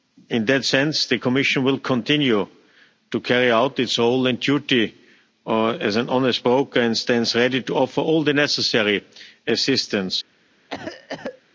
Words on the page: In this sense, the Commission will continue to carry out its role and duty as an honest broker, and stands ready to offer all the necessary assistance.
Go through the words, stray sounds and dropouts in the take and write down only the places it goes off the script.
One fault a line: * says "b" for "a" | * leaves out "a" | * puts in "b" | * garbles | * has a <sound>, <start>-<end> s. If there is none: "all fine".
* says "that" for "this"
* has a cough, 10.7-11.4 s